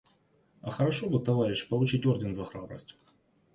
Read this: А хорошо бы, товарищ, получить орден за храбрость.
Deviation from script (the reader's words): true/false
false